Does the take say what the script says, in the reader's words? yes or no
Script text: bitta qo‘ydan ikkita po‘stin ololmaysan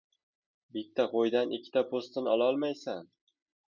yes